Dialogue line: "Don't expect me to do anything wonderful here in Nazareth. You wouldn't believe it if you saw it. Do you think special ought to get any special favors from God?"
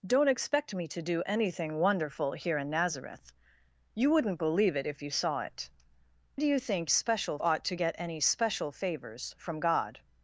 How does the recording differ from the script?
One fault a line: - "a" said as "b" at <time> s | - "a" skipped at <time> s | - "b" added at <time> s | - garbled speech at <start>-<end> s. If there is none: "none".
none